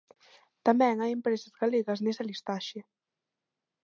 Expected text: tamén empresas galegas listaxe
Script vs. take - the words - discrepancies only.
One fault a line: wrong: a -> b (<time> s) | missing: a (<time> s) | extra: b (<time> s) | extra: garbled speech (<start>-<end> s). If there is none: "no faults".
extra: hai (1.0 s)
extra: nesa (2.0 s)